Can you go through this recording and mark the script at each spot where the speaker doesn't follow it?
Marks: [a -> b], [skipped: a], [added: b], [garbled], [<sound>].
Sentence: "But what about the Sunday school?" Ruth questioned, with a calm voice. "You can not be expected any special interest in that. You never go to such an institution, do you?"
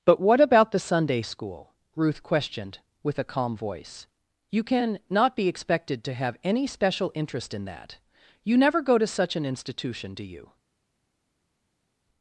"But what about the Sunday school?" Ruth questioned, with a calm voice. "You can not be expected [added: to have] any special interest in that. You never go to such an institution, do you?"